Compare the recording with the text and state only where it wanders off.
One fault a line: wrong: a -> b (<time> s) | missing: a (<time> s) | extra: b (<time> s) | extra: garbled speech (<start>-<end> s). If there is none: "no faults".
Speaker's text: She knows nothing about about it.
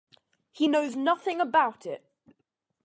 wrong: She -> He (0.5 s)
missing: about (1.9 s)